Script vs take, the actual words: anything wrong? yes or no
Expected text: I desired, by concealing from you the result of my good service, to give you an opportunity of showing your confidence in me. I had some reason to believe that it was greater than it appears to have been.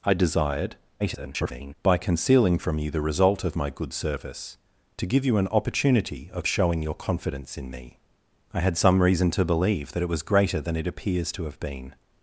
yes